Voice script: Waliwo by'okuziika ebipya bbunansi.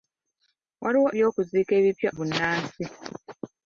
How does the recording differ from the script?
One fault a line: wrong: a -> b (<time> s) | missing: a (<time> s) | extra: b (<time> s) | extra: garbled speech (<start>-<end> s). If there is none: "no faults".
no faults